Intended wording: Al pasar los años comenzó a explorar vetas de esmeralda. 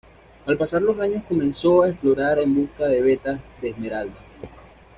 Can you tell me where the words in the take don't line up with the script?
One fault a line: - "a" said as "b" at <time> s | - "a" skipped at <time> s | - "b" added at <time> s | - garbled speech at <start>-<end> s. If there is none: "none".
- "en busca de" added at 2.4 s